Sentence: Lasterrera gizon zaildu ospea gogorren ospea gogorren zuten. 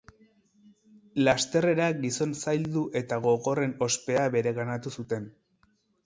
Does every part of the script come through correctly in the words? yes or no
no